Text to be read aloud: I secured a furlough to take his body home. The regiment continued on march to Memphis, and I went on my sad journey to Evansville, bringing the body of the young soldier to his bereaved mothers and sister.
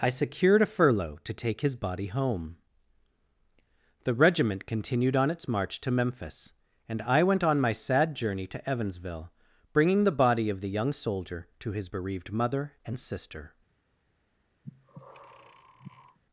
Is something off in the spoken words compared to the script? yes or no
yes